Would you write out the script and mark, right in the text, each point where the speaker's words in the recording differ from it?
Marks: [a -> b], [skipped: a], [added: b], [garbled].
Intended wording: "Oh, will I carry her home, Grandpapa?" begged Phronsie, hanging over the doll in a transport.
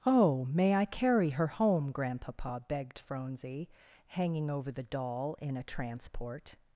"Oh, [will -> may] I carry her home, Grandpapa?" begged Phronsie, hanging over the doll in a transport.